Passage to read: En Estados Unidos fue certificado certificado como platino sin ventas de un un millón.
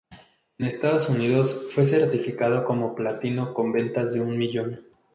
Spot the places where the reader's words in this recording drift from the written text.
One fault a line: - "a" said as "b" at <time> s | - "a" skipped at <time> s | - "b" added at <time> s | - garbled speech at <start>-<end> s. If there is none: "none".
- "certificado" skipped at 2.6 s
- "sin" said as "con" at 3.5 s
- "un" skipped at 4.4 s